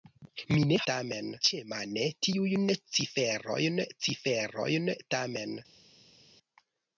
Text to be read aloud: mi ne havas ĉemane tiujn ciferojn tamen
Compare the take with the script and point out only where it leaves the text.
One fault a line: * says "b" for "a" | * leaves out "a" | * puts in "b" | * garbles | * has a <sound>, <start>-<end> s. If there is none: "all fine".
* says "tamen" for "havas"
* puts in "ciferojn"